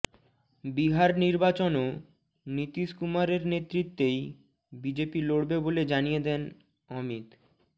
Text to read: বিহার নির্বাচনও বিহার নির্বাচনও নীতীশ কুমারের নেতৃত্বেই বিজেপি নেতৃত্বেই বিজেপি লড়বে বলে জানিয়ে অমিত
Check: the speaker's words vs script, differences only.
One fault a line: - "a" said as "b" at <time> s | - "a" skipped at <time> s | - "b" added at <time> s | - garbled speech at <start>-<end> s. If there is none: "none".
- "বিহার নির্বাচনও" skipped at 1.9 s
- "নেতৃত্বেই বিজেপি" skipped at 5.2 s
- "দেন" added at 6.2 s